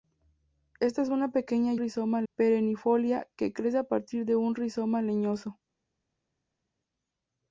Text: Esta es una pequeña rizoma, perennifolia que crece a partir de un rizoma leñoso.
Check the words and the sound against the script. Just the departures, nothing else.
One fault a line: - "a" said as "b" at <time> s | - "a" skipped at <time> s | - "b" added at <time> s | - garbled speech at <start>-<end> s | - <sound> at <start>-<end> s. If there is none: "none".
none